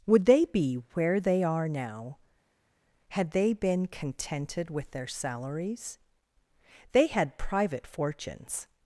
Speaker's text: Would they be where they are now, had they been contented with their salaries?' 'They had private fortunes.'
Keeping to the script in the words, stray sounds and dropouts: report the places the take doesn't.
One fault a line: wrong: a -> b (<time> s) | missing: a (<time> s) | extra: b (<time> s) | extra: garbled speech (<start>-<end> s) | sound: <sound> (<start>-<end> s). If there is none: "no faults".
no faults